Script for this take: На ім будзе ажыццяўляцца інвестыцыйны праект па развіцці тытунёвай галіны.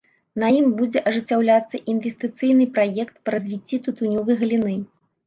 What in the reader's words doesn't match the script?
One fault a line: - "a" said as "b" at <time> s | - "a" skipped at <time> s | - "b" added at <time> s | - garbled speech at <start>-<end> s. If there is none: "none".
none